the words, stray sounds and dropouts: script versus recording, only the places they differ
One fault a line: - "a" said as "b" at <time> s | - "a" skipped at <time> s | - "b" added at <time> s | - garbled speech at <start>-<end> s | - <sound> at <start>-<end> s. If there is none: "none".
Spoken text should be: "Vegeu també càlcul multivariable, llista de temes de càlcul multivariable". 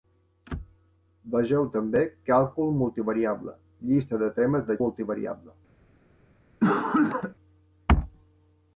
- "càlcul" skipped at 4.8 s
- cough at 6.6-7.4 s